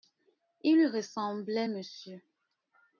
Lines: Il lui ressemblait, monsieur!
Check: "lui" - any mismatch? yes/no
no